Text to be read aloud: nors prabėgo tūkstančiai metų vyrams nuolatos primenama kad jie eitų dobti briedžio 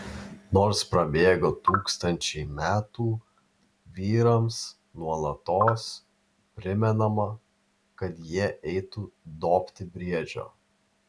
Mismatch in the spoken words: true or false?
false